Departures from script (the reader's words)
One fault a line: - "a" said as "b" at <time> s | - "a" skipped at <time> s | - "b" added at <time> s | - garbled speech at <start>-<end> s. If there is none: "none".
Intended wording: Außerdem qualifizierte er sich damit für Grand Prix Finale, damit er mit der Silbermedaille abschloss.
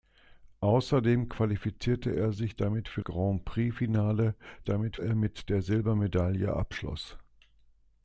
none